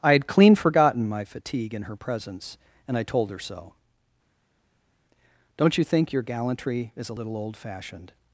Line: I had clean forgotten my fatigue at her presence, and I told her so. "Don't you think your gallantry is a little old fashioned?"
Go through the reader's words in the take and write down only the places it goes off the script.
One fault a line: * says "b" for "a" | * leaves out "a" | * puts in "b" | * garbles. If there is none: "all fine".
* says "in" for "at"